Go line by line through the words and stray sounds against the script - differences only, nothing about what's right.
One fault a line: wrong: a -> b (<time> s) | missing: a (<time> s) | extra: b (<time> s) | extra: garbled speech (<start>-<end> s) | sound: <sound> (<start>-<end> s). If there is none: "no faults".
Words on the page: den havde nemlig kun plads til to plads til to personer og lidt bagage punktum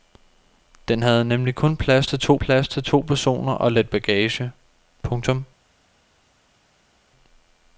no faults